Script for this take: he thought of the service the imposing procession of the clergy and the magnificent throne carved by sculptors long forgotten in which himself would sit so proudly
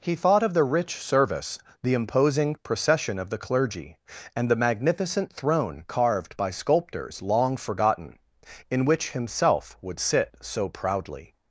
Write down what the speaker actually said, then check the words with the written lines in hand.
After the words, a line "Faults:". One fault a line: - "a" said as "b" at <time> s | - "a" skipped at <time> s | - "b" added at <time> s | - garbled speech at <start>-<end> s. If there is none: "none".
he thought of the rich service the imposing procession of the clergy and the magnificent throne carved by sculptors long forgotten in which himself would sit so proudly
Faults:
- "rich" added at 0.6 s